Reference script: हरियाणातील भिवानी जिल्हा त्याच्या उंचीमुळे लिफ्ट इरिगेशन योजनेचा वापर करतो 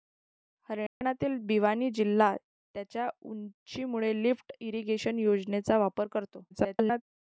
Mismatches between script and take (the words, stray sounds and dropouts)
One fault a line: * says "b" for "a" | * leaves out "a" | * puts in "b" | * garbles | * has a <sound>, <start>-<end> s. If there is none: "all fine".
* has a dropout, 0.9-1.0 s
* garbles